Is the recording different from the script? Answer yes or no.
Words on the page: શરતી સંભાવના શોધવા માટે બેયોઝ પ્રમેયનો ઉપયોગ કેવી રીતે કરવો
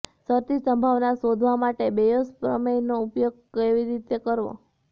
no